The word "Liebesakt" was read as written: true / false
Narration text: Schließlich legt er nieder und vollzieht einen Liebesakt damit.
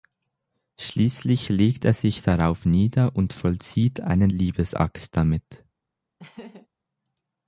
true